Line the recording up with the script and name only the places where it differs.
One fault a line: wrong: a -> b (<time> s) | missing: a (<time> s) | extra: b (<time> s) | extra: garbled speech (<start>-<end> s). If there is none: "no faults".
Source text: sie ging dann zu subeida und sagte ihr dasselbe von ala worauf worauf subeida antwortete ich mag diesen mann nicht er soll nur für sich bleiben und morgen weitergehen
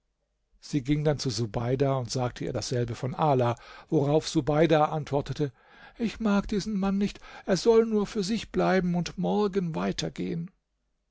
missing: worauf (4.3 s)